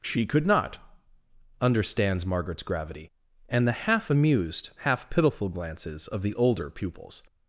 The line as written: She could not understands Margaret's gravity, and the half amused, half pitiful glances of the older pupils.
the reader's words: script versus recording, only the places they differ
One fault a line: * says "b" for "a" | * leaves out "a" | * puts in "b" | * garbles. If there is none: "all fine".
all fine